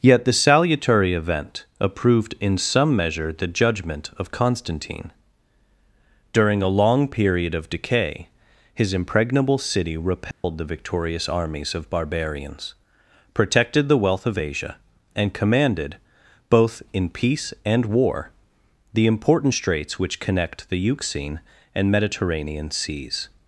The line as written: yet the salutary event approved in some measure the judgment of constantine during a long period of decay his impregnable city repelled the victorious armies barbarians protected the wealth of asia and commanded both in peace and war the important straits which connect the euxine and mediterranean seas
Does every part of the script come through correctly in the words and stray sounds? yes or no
no